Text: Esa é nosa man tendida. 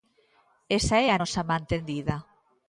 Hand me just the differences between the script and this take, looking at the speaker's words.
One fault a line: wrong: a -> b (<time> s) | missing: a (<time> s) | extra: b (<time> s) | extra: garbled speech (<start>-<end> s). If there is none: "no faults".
extra: a (1.1 s)